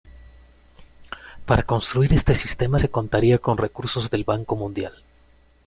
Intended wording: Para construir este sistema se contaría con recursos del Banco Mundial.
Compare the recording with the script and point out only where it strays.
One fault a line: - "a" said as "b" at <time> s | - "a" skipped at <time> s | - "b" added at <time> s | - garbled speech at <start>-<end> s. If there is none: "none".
none